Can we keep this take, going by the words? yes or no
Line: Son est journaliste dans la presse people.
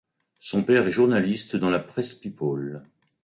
no